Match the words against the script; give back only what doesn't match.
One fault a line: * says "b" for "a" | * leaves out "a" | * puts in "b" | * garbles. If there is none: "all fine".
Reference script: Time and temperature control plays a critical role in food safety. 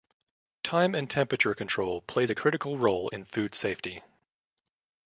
all fine